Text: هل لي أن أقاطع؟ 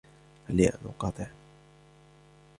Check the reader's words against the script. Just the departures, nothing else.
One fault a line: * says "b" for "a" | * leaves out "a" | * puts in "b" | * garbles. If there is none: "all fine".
all fine